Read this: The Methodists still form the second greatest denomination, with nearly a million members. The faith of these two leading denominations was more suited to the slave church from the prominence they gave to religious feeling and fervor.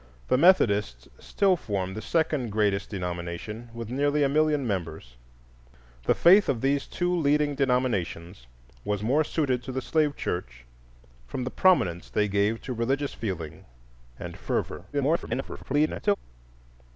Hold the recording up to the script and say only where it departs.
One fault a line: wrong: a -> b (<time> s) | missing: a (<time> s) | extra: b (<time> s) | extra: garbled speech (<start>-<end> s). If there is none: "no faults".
extra: garbled speech (14.9-16.2 s)